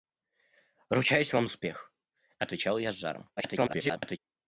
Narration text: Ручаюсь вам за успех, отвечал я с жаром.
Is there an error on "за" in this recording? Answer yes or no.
yes